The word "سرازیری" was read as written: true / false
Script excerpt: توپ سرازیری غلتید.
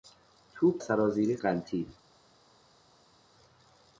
true